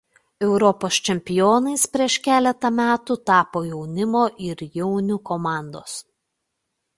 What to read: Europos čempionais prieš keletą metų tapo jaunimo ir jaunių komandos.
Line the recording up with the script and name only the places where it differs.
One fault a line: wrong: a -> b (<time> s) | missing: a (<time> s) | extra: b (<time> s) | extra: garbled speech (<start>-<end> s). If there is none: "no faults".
no faults